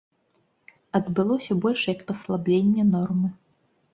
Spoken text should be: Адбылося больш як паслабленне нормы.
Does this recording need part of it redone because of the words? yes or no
no